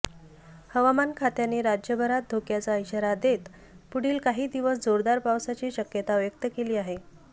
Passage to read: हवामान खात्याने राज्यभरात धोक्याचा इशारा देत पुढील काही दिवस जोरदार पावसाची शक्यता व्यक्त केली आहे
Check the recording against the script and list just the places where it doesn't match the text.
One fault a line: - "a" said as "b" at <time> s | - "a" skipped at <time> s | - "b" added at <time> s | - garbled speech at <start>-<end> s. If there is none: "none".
none